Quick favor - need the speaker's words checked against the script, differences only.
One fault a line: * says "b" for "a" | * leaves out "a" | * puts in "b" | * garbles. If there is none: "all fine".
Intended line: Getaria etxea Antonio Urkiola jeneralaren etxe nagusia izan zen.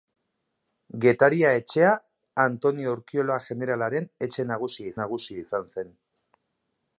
* puts in "nagusia"